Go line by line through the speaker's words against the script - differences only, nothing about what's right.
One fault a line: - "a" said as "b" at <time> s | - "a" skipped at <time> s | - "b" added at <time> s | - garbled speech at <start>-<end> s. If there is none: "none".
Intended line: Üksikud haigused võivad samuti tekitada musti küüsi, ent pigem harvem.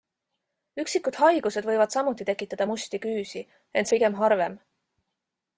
none